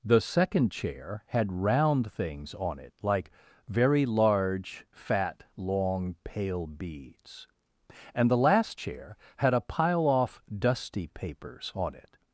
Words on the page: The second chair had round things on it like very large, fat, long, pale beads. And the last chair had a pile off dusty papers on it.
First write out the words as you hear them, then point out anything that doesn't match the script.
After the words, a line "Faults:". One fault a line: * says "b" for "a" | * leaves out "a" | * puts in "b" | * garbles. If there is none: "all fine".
The second chair had round things on it like very large, fat, long, pale beads. And the last chair had a pile off dusty papers on it.
Faults:
all fine